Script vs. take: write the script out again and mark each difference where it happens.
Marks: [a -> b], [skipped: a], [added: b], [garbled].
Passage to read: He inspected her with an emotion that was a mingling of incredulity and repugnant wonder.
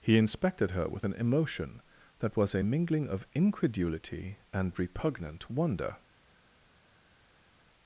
He inspected her with an emotion that was a mingling of incredulity and repugnant wonder.